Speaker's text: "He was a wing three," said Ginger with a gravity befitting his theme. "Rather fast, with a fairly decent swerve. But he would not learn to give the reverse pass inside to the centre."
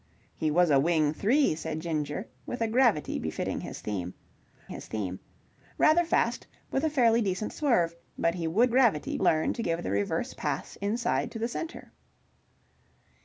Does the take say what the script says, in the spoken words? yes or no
no